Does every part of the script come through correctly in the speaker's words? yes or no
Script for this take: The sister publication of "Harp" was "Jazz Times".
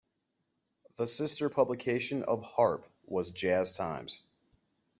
yes